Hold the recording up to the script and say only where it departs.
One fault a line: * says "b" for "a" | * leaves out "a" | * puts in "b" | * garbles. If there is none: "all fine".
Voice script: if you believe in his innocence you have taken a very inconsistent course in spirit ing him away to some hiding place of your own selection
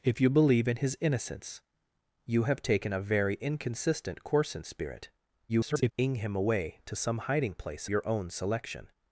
* garbles
* leaves out "of"